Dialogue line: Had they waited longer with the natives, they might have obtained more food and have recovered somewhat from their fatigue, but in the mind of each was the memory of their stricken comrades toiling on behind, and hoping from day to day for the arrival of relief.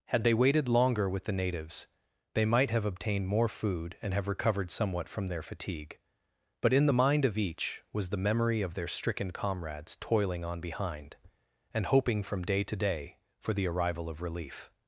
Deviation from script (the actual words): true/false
false